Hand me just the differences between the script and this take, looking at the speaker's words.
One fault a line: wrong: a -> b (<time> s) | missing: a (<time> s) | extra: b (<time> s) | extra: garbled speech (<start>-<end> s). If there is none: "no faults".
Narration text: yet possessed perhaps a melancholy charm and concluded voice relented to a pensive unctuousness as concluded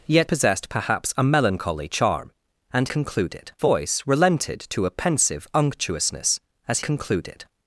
no faults